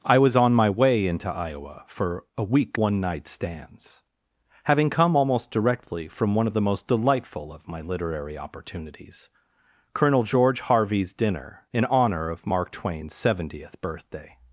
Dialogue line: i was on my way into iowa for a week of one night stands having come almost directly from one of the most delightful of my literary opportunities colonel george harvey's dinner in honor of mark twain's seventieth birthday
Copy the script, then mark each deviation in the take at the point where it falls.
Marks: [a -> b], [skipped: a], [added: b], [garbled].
i was on my way into iowa for a week [skipped: of] one night stands having come almost directly from one of the most delightful of my literary opportunities colonel george harvey's dinner in honor of mark twain's seventieth birthday